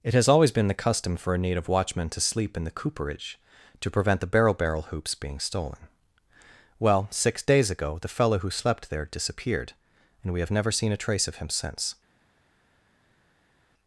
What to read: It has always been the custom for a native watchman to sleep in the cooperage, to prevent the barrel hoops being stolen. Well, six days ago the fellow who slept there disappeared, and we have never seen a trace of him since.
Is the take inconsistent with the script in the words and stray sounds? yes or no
yes